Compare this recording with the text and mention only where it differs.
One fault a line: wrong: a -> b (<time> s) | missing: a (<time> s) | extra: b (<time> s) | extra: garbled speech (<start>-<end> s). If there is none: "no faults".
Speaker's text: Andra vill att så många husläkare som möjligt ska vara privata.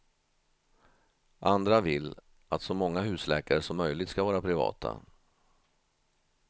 no faults